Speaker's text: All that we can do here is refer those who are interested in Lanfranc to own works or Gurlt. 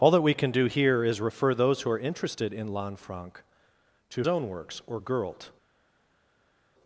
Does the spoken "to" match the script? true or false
true